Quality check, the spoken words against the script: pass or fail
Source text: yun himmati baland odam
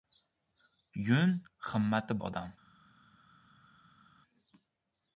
fail